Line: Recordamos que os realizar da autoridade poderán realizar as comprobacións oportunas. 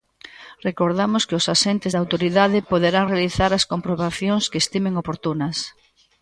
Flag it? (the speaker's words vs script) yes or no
yes